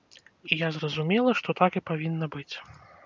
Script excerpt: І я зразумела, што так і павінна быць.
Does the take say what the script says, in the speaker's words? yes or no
yes